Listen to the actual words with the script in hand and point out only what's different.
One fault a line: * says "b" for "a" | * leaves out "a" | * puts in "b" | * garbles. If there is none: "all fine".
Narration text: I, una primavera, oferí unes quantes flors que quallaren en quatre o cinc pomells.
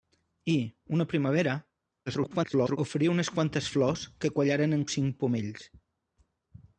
* garbles
* leaves out "quatre"